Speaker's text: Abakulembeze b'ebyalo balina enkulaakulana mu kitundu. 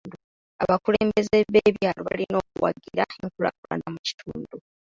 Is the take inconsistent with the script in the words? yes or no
yes